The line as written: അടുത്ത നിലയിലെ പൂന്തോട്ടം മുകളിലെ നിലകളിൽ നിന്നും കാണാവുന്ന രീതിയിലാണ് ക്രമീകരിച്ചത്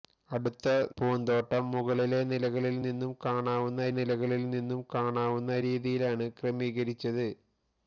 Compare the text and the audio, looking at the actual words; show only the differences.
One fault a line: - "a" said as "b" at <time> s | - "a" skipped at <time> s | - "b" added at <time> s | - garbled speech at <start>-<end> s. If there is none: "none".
- "നിലയിലെ" skipped at 0.7 s
- "നിലകളിൽ നിന്നും കാണാവുന്ന" added at 3.9 s